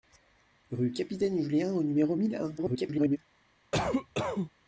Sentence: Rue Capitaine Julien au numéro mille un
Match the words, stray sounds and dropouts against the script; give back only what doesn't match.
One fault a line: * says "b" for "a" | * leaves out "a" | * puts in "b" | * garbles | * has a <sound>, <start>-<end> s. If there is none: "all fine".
* garbles
* has a cough, 3.7-4.5 s